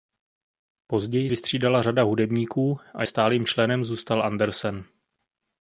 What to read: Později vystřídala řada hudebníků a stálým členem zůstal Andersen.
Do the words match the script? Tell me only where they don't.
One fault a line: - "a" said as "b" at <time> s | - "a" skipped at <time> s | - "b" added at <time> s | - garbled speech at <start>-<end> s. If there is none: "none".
none